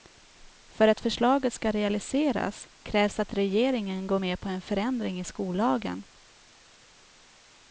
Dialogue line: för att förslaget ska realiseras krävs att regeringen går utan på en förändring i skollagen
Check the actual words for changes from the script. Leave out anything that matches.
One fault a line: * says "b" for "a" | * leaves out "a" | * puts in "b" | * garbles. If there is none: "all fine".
* says "med" for "utan"